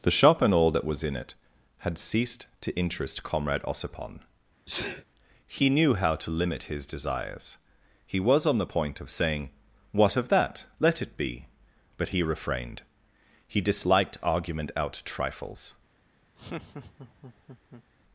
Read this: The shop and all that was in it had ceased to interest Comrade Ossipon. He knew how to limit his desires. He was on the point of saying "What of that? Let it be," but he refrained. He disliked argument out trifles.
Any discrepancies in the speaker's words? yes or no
no